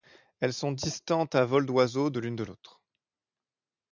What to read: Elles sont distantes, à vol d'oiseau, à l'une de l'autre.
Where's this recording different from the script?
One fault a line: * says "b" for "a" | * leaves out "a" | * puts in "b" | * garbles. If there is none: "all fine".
* says "de" for "à"